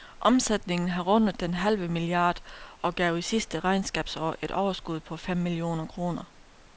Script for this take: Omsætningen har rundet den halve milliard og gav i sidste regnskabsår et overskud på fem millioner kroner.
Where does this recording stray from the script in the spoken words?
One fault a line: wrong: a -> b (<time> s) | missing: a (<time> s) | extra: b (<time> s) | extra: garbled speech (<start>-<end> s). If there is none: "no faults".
no faults